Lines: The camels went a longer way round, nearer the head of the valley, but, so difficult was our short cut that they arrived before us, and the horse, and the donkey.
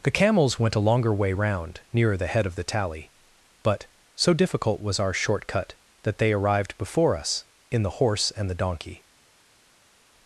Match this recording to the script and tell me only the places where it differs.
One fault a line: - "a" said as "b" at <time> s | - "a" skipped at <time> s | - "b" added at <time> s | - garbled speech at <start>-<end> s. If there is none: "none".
- "valley" said as "tally" at 2.6 s
- "and" said as "in" at 7.7 s